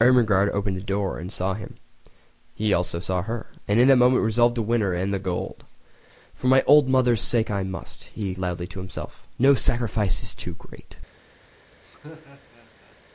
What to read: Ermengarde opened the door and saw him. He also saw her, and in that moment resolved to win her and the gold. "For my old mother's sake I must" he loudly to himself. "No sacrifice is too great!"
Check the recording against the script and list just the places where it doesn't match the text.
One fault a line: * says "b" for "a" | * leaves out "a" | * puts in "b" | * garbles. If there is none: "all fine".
all fine